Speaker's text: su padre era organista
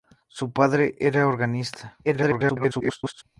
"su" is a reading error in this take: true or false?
false